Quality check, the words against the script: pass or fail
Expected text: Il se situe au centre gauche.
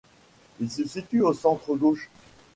pass